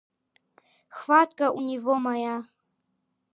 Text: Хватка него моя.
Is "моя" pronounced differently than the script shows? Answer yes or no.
no